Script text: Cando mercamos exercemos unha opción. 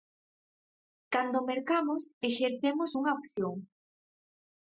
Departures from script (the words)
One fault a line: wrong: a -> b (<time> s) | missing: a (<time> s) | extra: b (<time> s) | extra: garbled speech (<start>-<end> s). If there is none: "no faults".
no faults